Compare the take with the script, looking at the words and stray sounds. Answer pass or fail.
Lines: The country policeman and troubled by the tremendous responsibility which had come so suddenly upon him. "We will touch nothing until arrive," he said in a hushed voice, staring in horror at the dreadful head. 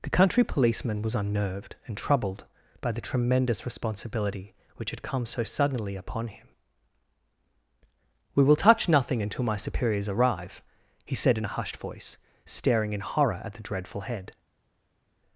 fail